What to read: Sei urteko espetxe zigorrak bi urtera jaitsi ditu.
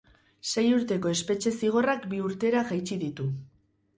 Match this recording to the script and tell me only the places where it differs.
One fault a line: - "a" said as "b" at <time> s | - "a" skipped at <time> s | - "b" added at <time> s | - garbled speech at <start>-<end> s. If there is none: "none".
none